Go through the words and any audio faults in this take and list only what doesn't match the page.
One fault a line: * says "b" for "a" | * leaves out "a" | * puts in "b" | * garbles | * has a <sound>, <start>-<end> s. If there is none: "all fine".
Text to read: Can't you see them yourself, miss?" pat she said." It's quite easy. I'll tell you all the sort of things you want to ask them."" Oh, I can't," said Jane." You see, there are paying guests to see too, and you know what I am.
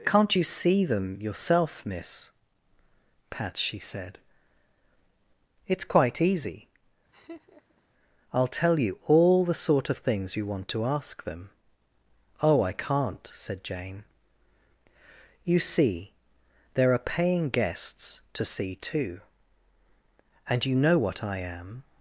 * has a laugh, 7.1-7.8 s